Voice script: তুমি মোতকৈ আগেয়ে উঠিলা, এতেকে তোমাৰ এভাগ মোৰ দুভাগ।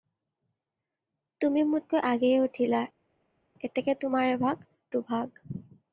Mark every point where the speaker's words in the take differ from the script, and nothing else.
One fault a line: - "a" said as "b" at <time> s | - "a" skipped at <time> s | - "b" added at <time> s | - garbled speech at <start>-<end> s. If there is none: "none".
- "মোৰ" skipped at 4.7 s